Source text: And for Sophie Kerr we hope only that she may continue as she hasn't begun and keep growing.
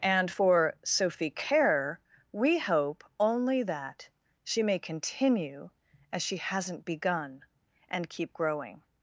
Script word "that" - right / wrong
right